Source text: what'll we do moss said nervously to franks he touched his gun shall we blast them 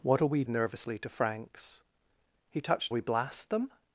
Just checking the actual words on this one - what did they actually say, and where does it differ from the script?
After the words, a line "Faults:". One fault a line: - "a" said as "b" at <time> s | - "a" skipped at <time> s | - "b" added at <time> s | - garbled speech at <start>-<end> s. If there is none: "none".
what'll we nervously to franks he touched we blast them
Faults:
- "do moss said" skipped at 0.4 s
- "his gun shall" skipped at 2.9 s